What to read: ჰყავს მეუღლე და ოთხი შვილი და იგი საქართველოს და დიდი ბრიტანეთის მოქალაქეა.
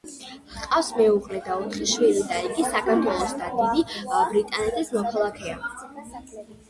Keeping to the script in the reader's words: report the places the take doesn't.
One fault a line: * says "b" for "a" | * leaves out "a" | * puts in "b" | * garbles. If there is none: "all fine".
all fine